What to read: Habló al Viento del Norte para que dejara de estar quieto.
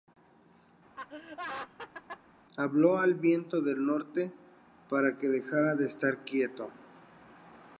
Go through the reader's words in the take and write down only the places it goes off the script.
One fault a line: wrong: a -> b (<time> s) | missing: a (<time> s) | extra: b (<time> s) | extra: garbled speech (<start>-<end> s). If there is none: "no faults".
no faults